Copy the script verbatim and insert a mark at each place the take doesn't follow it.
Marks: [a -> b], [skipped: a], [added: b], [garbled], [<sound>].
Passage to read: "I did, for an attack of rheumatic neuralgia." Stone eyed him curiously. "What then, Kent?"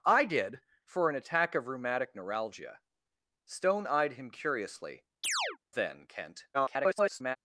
"I did, for an attack of rheumatic neuralgia." Stone eyed him curiously. [skipped: "What] [chirp] then, Kent?" [garbled]